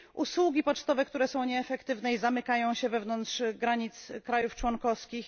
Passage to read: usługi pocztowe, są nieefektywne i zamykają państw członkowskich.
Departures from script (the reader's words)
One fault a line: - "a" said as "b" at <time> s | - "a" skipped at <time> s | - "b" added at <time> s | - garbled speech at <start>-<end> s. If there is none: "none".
- "które" added at 1.1 s
- "się wewnątrz granic" added at 2.7 s